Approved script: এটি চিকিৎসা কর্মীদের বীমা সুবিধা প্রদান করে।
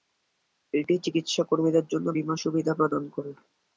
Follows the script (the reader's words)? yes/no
no